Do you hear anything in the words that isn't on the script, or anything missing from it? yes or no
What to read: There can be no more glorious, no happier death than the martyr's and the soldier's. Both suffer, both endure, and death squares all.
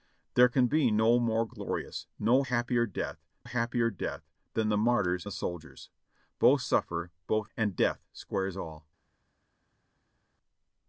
yes